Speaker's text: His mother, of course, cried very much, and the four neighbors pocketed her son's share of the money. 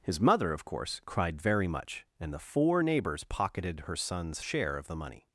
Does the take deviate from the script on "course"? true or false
false